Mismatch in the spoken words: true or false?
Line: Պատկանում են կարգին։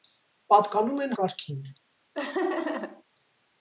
false